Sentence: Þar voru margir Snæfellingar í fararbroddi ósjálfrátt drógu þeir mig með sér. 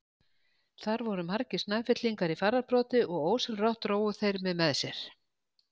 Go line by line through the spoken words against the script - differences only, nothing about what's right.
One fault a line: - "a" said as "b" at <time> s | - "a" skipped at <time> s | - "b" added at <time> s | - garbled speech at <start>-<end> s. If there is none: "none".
- "og" added at 3.2 s